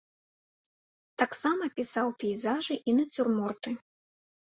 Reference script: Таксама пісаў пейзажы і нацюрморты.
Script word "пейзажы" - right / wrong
right